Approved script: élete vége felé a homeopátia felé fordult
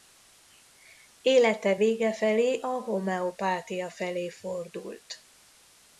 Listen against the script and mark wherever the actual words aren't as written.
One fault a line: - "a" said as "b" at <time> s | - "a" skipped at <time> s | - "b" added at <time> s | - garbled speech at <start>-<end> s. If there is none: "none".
none